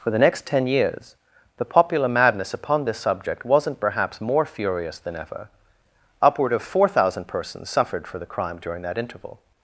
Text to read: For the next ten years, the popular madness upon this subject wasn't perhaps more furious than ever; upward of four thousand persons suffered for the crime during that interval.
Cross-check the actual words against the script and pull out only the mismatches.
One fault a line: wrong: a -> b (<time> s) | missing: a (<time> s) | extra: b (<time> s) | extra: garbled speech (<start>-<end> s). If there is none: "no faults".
no faults